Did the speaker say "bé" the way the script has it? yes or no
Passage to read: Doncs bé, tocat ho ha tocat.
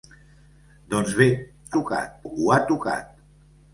yes